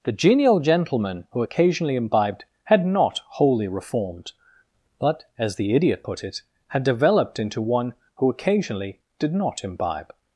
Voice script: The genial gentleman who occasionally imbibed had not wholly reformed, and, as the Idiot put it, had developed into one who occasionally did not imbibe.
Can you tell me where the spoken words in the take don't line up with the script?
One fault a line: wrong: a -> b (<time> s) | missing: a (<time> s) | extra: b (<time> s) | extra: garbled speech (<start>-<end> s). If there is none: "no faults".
wrong: and -> but (5.0 s)